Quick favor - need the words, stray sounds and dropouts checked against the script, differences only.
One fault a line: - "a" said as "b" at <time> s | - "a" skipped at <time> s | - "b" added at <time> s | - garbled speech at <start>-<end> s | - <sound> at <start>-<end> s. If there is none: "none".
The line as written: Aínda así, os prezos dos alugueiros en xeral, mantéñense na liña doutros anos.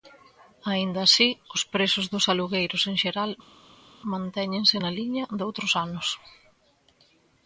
none